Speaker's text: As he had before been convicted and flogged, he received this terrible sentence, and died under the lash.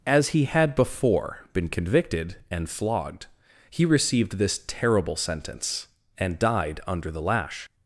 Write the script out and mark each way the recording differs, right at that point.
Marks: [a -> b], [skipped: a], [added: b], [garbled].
As he had before been convicted and flogged, he received this terrible sentence, and died under the lash.